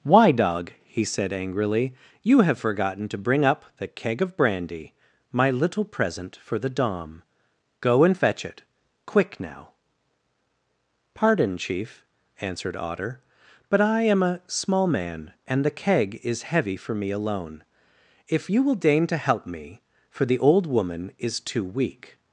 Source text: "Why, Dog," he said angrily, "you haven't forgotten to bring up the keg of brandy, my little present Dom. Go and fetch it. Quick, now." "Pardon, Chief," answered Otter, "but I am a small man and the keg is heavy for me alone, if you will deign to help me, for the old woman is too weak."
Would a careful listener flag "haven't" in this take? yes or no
yes